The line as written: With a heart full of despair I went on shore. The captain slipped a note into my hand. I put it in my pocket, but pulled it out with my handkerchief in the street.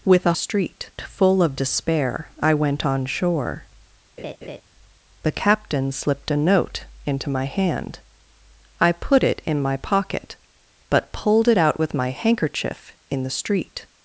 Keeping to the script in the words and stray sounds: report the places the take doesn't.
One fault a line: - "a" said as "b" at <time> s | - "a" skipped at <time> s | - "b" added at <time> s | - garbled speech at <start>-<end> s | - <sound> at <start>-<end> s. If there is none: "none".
- "heart" said as "street" at 0.3 s
- laugh at 4.2-4.6 s